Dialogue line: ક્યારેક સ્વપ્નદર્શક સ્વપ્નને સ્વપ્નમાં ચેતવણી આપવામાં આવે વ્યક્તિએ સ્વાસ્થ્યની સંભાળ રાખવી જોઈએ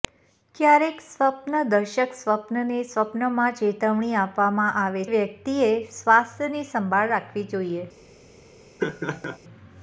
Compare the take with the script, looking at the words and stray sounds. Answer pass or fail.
fail